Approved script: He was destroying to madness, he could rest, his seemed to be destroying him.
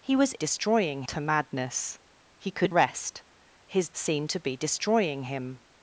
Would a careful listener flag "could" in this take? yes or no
no